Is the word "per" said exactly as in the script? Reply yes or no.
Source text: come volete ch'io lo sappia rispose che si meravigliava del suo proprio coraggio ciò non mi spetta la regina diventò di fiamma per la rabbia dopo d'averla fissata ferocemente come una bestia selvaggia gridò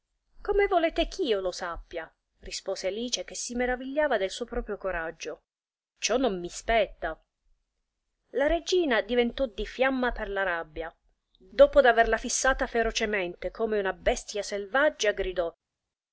yes